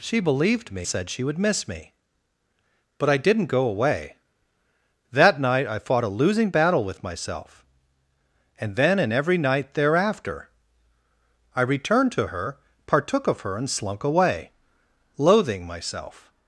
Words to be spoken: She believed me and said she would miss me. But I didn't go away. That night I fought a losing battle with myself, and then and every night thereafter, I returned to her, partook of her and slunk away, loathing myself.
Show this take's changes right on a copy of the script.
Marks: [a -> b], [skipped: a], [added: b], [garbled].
She believed me [skipped: and] said she would miss me. But I didn't go away. That night I fought a losing battle with myself, and then and every night thereafter, I returned to her, partook of her and slunk away, loathing myself.